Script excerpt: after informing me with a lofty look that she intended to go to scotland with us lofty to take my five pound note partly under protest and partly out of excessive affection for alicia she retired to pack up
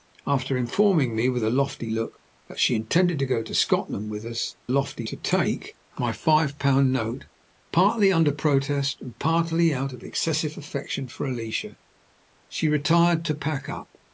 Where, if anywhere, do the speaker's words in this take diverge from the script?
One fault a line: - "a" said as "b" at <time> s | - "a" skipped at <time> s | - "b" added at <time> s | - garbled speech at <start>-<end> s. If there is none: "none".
none